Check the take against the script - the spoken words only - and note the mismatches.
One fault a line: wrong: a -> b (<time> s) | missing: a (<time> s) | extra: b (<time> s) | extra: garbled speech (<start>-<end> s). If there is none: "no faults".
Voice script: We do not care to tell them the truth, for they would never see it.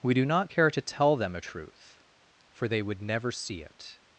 wrong: the -> a (1.4 s)